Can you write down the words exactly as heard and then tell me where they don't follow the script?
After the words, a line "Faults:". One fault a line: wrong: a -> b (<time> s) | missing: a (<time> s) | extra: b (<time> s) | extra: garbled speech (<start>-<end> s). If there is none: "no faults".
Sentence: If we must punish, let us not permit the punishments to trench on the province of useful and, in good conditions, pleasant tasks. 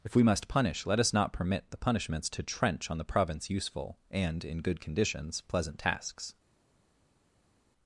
If we must punish, let us not permit the punishments to trench on the province useful and, in good conditions, pleasant tasks.
Faults:
missing: of (3.5 s)